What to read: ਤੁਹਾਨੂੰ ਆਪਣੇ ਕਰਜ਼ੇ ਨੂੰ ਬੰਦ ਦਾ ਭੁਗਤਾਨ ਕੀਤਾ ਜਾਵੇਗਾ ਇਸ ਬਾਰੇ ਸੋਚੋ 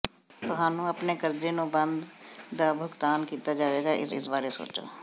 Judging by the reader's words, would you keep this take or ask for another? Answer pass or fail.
fail